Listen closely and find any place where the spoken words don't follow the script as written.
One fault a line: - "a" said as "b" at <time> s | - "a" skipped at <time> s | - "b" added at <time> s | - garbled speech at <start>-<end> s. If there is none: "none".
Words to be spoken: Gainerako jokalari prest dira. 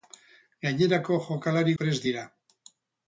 none